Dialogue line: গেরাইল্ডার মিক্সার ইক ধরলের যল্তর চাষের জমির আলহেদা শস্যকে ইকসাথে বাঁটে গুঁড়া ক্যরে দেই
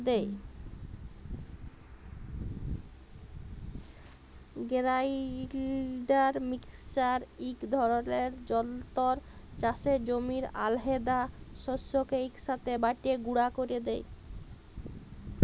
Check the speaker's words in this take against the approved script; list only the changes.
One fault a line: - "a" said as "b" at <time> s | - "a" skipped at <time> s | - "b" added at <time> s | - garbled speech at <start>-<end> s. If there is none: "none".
none